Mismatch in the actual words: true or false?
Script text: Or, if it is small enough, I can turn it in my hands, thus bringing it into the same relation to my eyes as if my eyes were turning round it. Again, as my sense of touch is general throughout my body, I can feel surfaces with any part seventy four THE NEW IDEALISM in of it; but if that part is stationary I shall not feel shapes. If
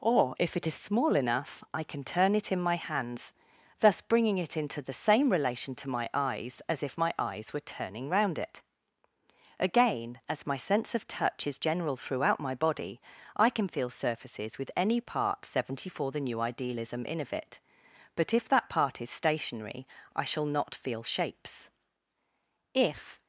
false